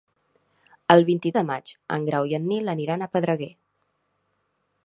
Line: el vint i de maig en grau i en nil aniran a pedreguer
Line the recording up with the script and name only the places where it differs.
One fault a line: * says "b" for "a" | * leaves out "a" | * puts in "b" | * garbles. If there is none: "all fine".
all fine